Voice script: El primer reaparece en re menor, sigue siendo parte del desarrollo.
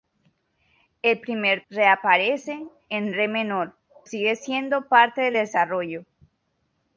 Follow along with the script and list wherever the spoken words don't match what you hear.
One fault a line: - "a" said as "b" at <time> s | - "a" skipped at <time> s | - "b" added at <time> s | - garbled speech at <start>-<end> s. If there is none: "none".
none